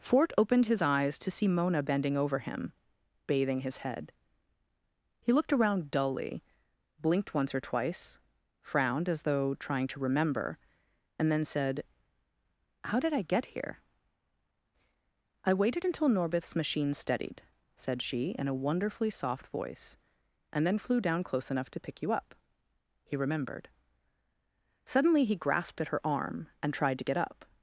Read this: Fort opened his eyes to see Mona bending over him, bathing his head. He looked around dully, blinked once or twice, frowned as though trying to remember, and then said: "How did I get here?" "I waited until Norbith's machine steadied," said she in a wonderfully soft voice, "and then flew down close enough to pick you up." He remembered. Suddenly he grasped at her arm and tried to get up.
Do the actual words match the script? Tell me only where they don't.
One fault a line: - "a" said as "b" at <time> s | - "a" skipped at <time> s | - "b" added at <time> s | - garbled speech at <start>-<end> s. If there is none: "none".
none